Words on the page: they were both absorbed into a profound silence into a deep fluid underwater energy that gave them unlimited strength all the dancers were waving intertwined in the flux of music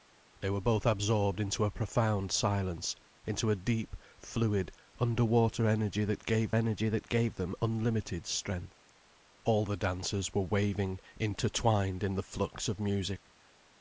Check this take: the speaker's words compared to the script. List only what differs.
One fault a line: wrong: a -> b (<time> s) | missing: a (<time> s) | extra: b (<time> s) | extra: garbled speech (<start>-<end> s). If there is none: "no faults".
extra: energy that gave (6.5 s)